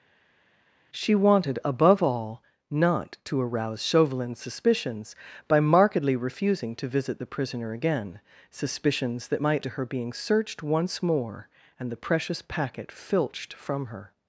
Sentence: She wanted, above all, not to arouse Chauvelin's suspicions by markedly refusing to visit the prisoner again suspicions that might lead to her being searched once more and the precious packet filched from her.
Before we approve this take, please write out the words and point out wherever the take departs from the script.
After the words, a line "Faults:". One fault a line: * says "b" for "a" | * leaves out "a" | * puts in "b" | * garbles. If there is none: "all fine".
She wanted, above all, not to arouse Chauvelin's suspicions by markedly refusing to visit the prisoner again suspicions that might to her being searched once more and the precious packet filched from her.
Faults:
* leaves out "lead"